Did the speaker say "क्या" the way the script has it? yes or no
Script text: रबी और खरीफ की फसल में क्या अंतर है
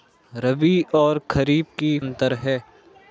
no